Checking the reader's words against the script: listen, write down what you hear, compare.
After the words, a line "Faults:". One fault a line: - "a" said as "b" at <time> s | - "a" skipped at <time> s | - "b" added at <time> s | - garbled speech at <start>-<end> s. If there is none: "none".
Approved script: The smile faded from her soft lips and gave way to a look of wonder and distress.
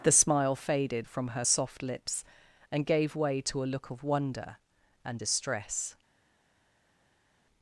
The smile faded from her soft lips and gave way to a look of wonder and distress.
Faults:
none